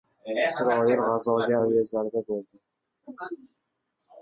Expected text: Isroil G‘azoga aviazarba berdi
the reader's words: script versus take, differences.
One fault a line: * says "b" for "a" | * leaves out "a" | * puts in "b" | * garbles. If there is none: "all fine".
all fine